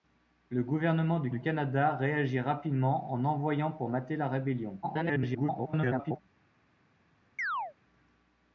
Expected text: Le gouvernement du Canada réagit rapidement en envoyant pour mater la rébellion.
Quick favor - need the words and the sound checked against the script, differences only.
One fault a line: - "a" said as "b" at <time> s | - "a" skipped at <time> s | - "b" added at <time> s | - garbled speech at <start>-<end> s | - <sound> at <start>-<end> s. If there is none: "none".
- "du" added at 1.3 s
- garbled speech at 4.8-6.2 s
- chirp at 7.4-7.7 s